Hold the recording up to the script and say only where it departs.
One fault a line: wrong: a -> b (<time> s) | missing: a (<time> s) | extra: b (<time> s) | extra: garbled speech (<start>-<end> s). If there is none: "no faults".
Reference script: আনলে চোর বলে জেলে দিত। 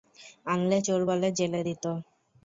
no faults